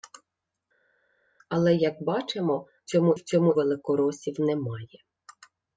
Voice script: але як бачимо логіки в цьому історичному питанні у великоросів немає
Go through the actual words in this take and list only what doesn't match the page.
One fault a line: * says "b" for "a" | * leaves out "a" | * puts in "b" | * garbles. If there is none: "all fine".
* says "цьому" for "логіки"
* leaves out "історичному питанні у"